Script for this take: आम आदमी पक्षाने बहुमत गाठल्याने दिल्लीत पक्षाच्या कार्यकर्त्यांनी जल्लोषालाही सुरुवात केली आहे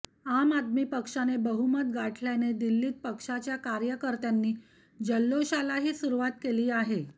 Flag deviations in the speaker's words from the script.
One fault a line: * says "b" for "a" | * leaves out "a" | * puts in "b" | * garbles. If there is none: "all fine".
all fine